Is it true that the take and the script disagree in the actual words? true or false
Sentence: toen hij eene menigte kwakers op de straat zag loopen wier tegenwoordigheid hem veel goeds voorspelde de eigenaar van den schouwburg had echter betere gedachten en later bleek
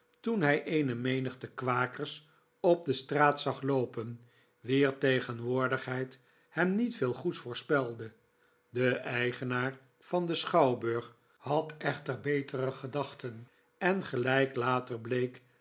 true